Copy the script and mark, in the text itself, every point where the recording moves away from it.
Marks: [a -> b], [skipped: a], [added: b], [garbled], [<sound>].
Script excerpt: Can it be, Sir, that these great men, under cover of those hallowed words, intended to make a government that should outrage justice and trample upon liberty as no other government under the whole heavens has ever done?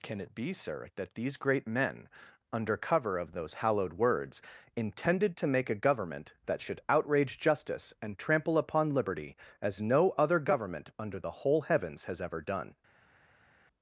Can it be, Sir, that these great men, under cover of those hallowed words, intended to make a government that should outrage justice and trample upon liberty as no other government under the whole heavens has ever done?